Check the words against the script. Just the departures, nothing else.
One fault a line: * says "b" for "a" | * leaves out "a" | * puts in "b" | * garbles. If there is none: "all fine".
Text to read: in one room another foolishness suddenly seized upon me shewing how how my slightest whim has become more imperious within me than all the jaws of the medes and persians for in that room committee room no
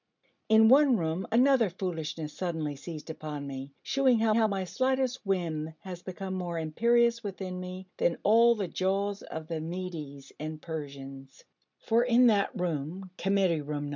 all fine